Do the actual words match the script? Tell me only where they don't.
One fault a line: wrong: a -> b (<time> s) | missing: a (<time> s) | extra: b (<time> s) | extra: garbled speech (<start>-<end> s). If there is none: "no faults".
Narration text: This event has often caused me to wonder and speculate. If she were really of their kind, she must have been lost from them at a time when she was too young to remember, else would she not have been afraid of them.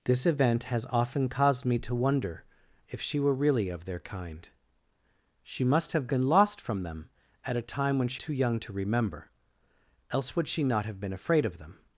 missing: and speculate (2.4 s)
missing: was (8.2 s)